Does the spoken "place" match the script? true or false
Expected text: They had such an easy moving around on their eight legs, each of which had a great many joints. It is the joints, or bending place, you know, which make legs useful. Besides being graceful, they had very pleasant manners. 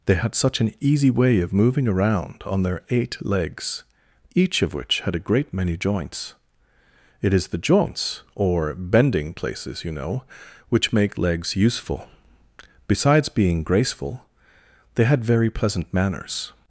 false